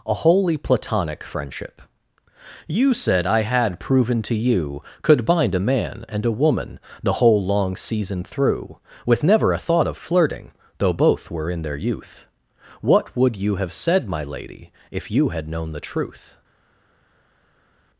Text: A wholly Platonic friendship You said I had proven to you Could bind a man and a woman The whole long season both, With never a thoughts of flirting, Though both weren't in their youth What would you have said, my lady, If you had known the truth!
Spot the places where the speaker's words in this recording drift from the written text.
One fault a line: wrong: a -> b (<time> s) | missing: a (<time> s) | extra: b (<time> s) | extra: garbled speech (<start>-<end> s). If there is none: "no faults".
wrong: both -> through (8.2 s)
wrong: thoughts -> thought (9.6 s)
wrong: weren't -> were (11.3 s)